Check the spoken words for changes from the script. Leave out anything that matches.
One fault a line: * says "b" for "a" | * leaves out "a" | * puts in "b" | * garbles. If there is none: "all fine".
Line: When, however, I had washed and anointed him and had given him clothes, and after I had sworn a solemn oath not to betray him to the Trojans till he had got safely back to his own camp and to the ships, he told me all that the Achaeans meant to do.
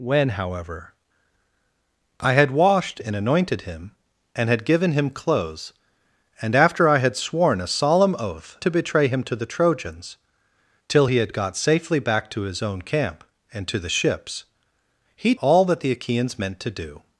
* leaves out "not"
* leaves out "told me"